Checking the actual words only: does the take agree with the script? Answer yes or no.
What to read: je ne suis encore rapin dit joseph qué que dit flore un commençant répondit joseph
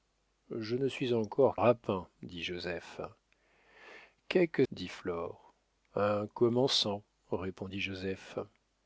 yes